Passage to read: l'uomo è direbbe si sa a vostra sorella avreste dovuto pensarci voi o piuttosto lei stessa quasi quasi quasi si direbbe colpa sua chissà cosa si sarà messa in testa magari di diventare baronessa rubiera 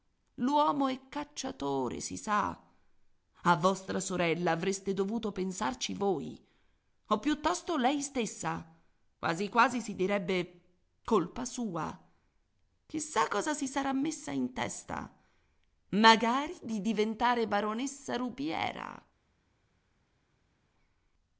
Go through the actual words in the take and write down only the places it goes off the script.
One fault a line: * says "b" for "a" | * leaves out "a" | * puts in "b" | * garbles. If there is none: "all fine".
* says "cacciatore" for "direbbe"
* leaves out "quasi"